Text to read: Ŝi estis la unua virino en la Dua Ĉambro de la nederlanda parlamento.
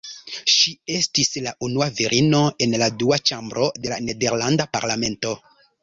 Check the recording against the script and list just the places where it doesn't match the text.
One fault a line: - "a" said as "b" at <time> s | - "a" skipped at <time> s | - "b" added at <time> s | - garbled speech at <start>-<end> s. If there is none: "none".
none